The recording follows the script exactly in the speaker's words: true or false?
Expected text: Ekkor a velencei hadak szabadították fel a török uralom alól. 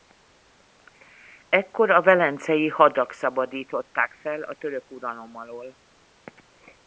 true